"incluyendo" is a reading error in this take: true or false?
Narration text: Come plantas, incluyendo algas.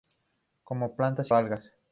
true